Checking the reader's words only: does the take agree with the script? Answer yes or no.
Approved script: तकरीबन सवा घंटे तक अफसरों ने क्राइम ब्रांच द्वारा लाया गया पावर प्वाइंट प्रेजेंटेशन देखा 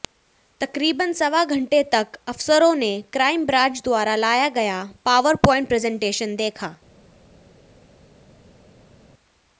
yes